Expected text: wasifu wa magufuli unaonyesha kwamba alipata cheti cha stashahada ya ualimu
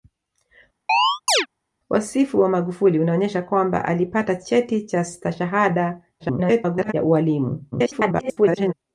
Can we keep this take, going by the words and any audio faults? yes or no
no